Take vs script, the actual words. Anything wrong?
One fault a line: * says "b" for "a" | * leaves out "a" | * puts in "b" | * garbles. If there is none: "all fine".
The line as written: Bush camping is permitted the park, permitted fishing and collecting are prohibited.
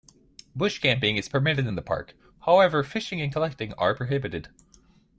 * puts in "in"
* says "however" for "permitted"